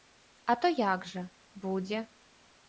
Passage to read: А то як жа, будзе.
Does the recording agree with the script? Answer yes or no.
yes